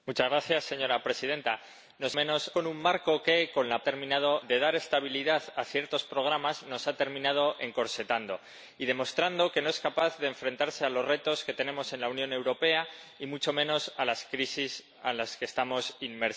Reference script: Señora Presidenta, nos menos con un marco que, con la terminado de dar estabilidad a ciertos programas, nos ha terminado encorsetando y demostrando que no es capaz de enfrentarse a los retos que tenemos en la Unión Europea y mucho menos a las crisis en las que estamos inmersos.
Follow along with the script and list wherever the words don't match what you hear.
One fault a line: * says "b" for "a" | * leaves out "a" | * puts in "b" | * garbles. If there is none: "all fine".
all fine